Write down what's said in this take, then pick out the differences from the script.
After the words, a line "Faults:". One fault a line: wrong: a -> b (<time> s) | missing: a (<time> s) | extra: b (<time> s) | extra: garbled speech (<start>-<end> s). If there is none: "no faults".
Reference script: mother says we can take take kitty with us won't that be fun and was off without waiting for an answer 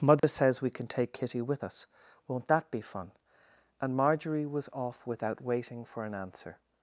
mother says we can take kitty with us won't that be fun and marjorie was off without waiting for an answer
Faults:
missing: take (1.1 s)
extra: marjorie (4.0 s)